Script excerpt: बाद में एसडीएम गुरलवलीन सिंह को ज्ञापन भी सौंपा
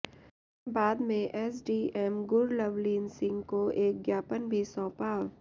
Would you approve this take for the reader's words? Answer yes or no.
no